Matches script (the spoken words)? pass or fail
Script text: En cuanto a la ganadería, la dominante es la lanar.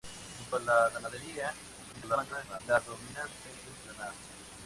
fail